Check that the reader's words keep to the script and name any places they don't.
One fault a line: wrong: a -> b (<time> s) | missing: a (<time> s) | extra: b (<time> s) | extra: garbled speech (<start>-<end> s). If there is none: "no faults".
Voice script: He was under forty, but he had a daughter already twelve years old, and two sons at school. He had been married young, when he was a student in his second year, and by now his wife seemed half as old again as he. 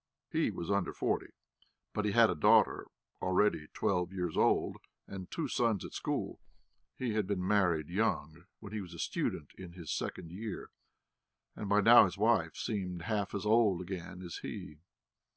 no faults